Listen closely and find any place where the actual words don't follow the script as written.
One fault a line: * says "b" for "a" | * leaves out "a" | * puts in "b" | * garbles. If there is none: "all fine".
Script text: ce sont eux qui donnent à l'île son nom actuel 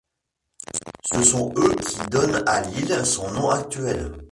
all fine